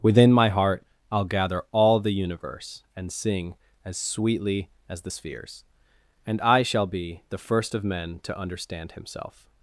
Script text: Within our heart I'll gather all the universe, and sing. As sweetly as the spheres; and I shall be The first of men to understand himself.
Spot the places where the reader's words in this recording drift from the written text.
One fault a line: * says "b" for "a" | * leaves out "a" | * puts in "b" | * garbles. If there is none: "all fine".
* says "my" for "our"